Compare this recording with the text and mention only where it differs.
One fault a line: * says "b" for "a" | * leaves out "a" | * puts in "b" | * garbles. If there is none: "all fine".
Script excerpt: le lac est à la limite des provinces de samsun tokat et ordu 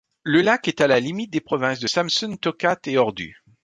all fine